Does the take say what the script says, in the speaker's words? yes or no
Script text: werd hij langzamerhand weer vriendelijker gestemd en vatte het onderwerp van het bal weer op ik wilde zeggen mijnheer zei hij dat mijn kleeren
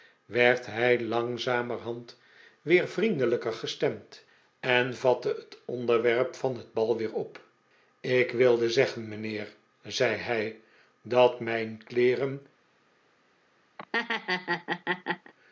yes